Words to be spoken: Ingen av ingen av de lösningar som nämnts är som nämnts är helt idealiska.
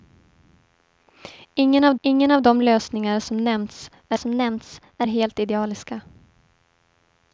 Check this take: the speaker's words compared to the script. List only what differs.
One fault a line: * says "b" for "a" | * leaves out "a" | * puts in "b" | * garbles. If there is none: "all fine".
all fine